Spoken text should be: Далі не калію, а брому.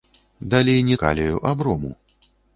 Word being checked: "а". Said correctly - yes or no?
yes